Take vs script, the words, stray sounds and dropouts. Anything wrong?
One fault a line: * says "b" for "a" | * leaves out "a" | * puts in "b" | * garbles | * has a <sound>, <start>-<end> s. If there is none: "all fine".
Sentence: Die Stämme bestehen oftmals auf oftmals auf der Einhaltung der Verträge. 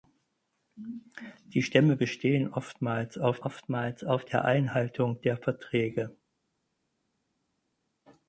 all fine